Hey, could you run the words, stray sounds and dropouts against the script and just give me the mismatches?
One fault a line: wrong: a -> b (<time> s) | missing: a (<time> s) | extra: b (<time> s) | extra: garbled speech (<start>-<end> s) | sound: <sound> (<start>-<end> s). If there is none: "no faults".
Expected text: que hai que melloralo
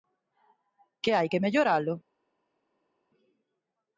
no faults